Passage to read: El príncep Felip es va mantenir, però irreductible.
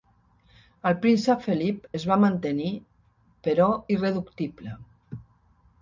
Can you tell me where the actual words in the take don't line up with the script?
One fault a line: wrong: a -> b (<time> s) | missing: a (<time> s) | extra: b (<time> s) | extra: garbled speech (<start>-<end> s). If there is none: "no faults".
no faults